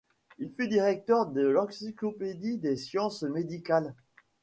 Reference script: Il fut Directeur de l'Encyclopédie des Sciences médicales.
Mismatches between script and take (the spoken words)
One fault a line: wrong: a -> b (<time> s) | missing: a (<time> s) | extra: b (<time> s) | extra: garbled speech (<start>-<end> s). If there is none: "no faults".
no faults